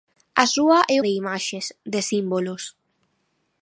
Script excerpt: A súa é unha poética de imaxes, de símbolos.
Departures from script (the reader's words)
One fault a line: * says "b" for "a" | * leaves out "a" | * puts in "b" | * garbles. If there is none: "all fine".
* leaves out "unha poética"